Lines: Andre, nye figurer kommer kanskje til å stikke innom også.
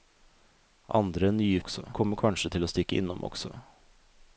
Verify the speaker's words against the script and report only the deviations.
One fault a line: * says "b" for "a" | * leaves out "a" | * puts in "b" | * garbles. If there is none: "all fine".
* says "også" for "figurer"